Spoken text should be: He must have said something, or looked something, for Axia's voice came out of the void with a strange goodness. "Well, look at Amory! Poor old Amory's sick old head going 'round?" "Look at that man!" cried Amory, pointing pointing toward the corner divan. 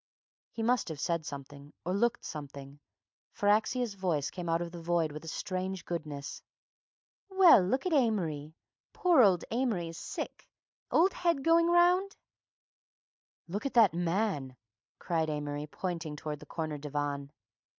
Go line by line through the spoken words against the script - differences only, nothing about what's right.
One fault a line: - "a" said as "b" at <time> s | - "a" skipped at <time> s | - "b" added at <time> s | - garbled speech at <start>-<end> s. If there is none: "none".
- "pointing" skipped at 16.1 s